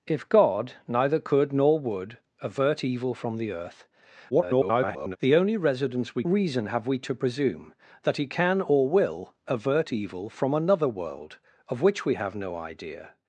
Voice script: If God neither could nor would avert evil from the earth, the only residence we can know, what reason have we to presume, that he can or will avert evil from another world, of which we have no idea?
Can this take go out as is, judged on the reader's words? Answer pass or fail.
fail